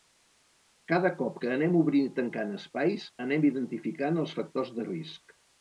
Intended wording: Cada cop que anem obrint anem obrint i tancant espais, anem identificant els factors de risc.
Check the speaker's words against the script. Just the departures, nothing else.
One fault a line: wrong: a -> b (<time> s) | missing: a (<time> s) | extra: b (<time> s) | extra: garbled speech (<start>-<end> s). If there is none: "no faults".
missing: anem obrint (2.1 s)